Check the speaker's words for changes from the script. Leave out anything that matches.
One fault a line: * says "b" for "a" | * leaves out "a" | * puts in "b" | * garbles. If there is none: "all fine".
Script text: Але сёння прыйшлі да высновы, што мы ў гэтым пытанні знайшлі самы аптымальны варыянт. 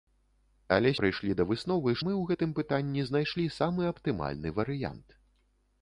* leaves out "сёння"
* leaves out "што"